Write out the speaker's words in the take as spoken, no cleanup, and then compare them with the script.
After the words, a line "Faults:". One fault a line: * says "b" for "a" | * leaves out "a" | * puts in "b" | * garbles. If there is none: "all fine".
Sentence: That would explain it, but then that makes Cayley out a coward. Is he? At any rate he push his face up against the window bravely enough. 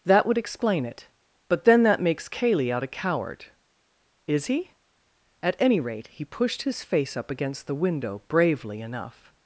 That would explain it, but then that makes Cayley out a coward. Is he? At any rate he pushed his face up against the window bravely enough.
Faults:
* says "pushed" for "push"